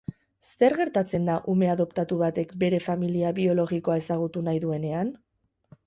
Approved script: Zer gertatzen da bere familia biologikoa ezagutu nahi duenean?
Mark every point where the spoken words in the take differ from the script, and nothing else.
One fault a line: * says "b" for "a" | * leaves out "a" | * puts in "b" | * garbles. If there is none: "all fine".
* puts in "ume adoptatu batek"